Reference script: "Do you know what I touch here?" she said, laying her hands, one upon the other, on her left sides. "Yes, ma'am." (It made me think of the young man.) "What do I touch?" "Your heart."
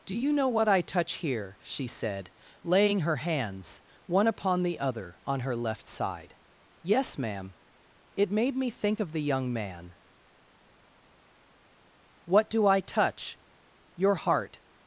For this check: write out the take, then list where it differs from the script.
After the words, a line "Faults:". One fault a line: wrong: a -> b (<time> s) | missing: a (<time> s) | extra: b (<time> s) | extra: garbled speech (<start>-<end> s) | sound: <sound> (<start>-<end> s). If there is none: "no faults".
"Do you know what I touch here?" she said, laying her hands, one upon the other, on her left side. "Yes, ma'am." (It made me think of the young man.) "What do I touch?" "Your heart."
Faults:
wrong: sides -> side (5.9 s)